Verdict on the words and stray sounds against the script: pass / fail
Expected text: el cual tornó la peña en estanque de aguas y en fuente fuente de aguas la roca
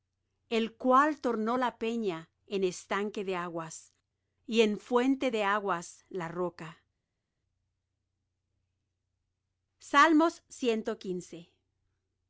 fail